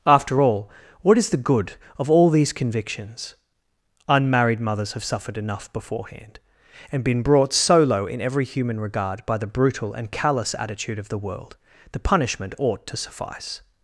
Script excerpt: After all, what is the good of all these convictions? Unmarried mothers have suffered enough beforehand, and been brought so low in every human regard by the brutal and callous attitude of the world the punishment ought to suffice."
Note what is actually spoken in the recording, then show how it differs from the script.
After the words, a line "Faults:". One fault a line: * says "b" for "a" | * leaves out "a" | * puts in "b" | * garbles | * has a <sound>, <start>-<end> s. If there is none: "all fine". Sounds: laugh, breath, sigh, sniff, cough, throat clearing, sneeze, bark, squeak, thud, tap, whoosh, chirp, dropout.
After all, what is the good of all these convictions? Unmarried mothers have suffered enough beforehand, and been brought so low in every human regard by the brutal and callous attitude of the world the punishment ought to suffice."
Faults:
all fine